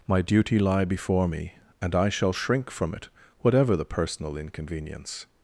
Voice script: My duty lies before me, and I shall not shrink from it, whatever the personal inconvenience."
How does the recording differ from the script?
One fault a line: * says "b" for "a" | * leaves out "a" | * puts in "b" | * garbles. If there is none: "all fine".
* says "lie" for "lies"
* leaves out "not"